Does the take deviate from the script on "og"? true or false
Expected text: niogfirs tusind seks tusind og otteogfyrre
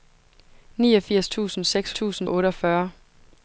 false